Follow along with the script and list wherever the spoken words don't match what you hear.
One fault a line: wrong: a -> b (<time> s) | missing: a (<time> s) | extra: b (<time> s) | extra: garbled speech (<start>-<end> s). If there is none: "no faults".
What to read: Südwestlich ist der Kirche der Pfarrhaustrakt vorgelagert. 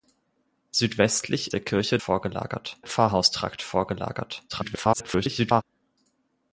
missing: ist (1.5 s)
wrong: der -> vorgelagert (2.0 s)
extra: garbled speech (4.5-5.6 s)